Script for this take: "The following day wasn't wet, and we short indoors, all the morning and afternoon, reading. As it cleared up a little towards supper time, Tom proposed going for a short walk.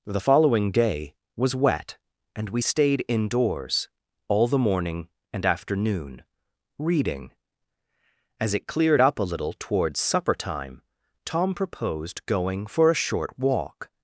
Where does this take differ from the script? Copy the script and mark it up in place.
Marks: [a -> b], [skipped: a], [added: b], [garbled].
"The following day [wasn't -> was] wet, and we [short -> stayed] indoors, all the morning and afternoon, reading. As it cleared up a little towards supper time, Tom proposed going for a short walk.